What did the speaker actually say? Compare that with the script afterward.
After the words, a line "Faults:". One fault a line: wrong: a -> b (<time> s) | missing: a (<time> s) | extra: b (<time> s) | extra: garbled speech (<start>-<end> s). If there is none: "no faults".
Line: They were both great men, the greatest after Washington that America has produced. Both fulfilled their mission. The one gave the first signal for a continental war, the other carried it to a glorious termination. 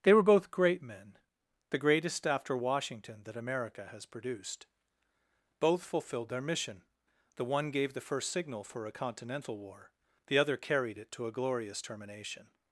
They were both great men, the greatest after Washington that America has produced. Both fulfilled their mission. The one gave the first signal for a continental war, the other carried it to a glorious termination.
Faults:
no faults